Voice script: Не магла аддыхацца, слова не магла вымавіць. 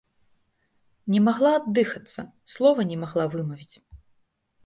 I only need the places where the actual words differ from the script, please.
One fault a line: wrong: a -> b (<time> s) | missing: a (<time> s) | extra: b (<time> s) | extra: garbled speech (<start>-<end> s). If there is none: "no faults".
no faults